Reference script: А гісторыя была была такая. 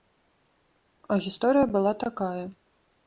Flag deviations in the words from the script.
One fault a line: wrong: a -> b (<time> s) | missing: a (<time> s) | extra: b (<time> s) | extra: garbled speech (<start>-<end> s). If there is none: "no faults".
missing: была (1.9 s)